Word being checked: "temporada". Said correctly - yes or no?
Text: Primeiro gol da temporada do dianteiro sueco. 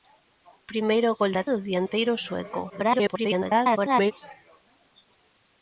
no